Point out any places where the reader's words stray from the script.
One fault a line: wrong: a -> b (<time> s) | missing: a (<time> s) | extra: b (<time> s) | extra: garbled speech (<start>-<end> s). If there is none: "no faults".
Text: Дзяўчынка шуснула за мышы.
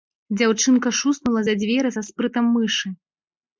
extra: дзверы са спрытам (1.6 s)